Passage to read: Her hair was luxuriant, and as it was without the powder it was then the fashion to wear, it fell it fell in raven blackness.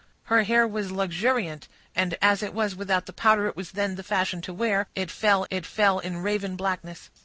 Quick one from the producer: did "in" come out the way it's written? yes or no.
yes